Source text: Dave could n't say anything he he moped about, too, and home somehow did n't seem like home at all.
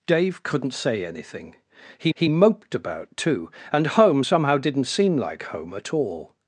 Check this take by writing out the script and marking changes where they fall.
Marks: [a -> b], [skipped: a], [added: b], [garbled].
Dave could n't say anything he he moped about, too, and home somehow did n't seem like home at all.